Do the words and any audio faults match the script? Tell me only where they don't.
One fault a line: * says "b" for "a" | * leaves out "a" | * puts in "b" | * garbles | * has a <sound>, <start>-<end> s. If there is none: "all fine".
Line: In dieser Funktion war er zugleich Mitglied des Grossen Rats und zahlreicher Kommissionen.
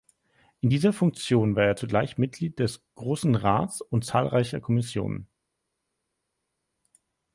all fine